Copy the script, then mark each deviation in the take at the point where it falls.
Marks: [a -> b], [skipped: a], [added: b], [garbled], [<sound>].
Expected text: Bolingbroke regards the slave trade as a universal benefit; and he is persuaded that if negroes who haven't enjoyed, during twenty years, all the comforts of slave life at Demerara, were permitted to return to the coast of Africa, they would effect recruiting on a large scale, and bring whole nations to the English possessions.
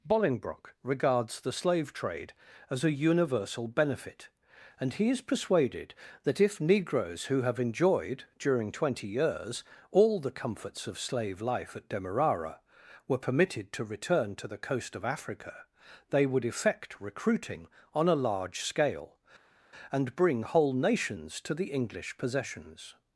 Bolingbroke regards the slave trade as a universal benefit; and he is persuaded that if negroes who [haven't -> have] enjoyed, during twenty years, all the comforts of slave life at Demerara, were permitted to return to the coast of Africa, they would effect recruiting on a large scale, and bring whole nations to the English possessions.